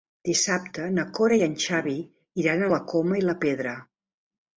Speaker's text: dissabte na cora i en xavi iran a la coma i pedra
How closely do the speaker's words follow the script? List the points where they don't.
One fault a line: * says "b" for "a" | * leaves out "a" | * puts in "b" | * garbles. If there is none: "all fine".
* puts in "la"